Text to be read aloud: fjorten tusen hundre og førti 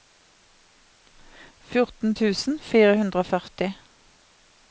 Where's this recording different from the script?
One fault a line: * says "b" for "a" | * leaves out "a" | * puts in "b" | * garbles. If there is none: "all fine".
* puts in "fire"